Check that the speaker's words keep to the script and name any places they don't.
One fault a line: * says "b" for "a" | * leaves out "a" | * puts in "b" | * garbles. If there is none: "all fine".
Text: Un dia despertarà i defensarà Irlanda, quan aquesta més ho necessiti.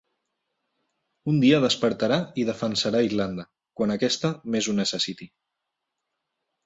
all fine